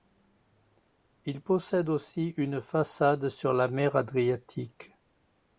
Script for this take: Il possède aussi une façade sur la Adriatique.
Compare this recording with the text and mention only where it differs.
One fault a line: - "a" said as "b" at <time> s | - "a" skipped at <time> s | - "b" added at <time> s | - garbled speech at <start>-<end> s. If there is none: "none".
- "mer" added at 3.7 s